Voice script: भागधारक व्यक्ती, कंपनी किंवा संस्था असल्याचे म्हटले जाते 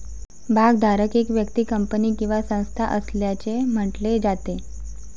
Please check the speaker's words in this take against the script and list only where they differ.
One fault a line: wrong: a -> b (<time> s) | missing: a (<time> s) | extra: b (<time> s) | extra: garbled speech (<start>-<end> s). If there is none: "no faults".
extra: एक (1.1 s)